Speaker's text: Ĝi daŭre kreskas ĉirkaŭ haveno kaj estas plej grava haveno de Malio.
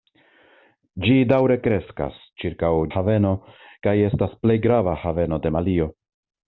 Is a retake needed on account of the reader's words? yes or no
no